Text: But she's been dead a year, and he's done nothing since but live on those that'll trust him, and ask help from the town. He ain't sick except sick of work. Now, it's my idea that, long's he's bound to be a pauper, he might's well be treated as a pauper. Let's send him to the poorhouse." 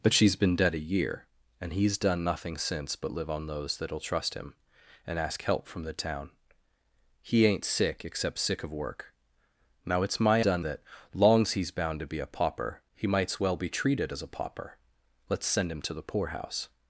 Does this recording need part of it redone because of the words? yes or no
yes